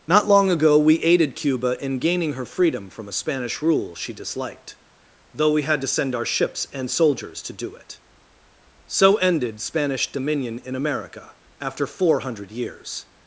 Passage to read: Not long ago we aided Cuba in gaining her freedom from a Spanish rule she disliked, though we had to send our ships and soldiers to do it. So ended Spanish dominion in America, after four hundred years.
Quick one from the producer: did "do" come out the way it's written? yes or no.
yes